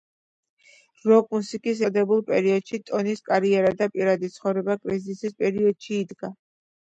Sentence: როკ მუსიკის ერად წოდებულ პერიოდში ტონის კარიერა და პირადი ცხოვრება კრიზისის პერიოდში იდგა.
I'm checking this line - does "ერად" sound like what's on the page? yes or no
no